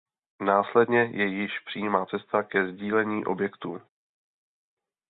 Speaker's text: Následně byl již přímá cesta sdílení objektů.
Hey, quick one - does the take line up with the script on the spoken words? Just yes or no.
no